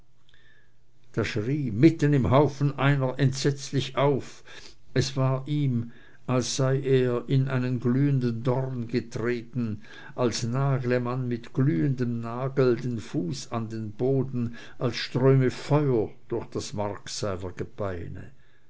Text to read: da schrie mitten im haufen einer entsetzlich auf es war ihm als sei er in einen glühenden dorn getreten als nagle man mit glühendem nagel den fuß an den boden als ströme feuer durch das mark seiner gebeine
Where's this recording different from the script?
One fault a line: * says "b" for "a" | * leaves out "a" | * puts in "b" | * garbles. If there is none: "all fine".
all fine